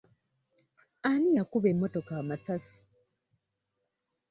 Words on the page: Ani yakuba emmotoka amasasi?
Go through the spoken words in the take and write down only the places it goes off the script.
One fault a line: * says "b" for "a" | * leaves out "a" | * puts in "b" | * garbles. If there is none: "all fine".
all fine